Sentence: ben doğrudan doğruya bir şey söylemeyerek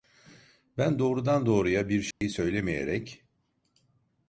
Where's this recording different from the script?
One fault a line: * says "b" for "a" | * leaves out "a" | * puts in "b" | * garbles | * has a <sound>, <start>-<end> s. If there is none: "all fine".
* has a dropout, 2.1-2.2 s